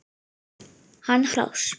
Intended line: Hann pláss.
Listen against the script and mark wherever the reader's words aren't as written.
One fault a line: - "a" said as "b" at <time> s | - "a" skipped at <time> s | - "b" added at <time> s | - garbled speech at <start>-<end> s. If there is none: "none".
none